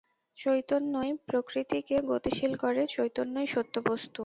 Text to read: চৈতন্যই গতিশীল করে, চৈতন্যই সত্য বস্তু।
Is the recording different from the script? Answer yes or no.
yes